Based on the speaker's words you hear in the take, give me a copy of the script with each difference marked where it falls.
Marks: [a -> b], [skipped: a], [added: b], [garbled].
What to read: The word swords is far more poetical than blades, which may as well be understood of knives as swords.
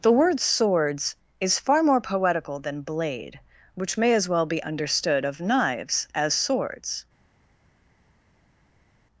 The word swords is far more poetical than [blades, -> blade] which may as well be understood of knives as swords.